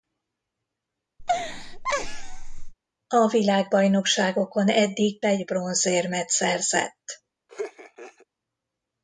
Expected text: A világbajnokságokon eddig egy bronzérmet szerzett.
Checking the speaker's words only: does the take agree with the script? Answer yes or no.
yes